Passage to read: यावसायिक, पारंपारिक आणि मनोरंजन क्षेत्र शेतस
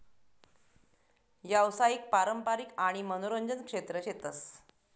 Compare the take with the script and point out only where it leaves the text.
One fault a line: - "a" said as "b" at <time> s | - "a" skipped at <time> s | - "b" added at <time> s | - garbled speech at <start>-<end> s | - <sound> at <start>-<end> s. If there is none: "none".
none